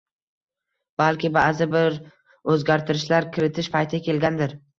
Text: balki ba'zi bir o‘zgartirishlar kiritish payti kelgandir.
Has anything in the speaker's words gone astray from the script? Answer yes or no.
no